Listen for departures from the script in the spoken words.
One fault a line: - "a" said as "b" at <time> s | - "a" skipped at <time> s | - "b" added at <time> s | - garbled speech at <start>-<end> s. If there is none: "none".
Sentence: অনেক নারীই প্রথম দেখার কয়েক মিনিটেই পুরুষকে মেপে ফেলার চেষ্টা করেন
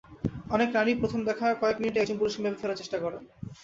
- "একজন" added at 2.0 s